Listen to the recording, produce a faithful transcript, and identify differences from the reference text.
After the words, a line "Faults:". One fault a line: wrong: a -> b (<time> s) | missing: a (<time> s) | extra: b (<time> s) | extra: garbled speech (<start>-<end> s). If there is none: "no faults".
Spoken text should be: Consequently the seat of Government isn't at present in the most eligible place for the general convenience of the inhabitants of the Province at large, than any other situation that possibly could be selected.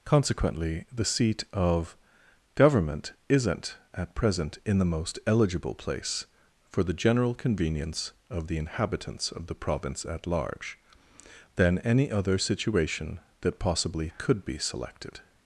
Consequently the seat of Government isn't at present in the most eligible place for the general convenience of the inhabitants of the Province at large, than any other situation that possibly could be selected.
Faults:
no faults